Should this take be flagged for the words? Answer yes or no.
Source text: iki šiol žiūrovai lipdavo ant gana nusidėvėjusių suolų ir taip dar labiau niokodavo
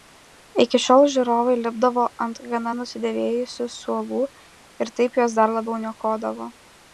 yes